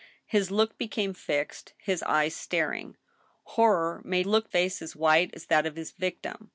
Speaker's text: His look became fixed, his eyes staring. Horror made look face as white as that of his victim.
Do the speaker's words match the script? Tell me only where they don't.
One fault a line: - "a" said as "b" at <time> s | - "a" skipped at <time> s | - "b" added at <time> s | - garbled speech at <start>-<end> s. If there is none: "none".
none